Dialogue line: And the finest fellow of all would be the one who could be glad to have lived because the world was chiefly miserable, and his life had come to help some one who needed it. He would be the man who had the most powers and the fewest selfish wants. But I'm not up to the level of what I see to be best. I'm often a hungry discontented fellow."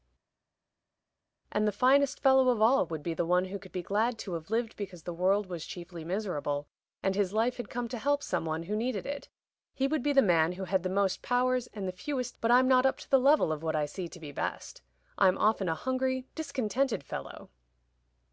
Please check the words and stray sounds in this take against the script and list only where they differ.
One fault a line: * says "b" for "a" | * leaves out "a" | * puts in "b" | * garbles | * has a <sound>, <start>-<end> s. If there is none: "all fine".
* leaves out "selfish wants"